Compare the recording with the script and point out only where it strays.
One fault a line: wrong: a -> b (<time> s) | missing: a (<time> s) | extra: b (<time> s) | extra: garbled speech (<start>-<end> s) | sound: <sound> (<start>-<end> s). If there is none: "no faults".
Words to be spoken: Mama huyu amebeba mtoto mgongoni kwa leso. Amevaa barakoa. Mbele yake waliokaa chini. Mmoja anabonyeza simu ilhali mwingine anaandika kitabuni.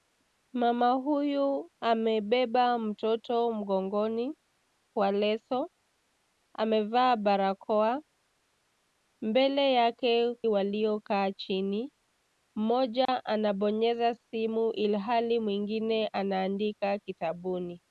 sound: dropout (13.0-13.1 s)